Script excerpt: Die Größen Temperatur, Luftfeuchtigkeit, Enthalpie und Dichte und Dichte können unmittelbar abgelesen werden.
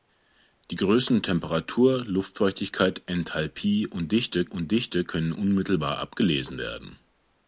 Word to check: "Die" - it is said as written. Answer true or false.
true